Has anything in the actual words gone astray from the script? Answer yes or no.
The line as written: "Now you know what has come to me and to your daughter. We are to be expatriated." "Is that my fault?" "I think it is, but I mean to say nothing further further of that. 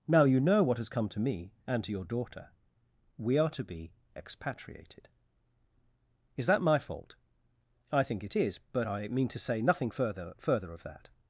no